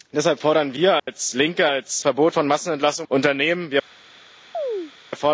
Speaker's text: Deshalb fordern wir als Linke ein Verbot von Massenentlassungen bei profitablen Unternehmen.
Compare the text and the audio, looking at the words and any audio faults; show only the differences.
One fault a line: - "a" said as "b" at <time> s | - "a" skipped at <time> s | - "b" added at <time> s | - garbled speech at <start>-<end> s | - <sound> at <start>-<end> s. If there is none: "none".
- dropout at 1.0-1.1 s
- "ein" said as "als" at 1.7 s
- "bei profitablen" skipped at 3.1 s
- chirp at 4.5-4.9 s